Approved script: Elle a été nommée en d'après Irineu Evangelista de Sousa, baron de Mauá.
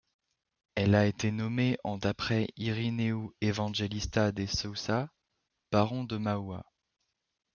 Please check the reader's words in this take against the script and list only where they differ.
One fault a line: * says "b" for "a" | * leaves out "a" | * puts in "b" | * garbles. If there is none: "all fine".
all fine